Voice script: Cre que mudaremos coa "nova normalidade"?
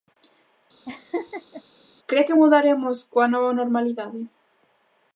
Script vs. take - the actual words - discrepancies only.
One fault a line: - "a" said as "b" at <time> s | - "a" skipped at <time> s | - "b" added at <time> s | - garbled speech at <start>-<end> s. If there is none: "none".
none